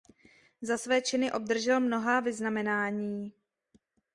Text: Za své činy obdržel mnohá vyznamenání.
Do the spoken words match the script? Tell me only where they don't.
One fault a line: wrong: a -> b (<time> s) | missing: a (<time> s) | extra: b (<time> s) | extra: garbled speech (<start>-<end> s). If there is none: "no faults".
no faults